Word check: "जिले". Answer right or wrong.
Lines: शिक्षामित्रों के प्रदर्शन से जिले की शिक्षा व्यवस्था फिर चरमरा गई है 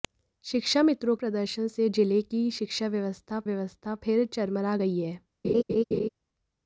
right